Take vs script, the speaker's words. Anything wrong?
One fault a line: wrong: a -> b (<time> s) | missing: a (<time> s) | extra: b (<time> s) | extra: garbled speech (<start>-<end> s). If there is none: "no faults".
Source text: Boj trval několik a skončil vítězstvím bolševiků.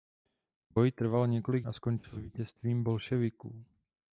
no faults